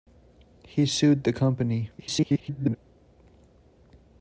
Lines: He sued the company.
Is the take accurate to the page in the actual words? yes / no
no